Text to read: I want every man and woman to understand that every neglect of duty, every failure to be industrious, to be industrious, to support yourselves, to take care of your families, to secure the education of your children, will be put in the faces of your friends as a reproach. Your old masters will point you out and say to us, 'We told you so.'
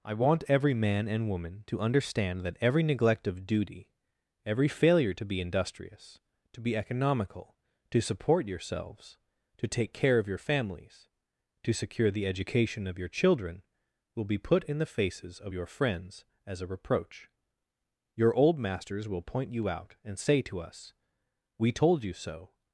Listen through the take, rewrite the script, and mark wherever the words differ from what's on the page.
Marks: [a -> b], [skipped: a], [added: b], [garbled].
I want every man and woman to understand that every neglect of duty, every failure to be industrious, to be [industrious, -> economical] to support yourselves, to take care of your families, to secure the education of your children, will be put in the faces of your friends as a reproach. Your old masters will point you out and say to us, 'We told you so.'